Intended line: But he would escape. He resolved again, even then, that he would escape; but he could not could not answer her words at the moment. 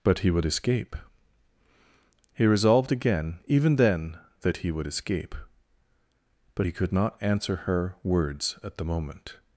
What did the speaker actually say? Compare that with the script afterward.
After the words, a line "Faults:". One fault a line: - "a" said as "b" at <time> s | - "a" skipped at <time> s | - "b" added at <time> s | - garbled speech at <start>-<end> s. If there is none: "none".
But he would escape. He resolved again, even then, that he would escape; but he could not answer her words at the moment.
Faults:
- "could not" skipped at 7.2 s